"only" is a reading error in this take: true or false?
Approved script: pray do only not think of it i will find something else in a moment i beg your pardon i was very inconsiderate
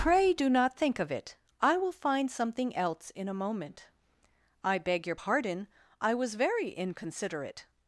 true